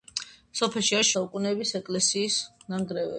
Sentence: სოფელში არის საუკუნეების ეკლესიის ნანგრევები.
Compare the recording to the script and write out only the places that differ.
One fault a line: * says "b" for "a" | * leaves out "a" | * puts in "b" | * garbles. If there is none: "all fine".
all fine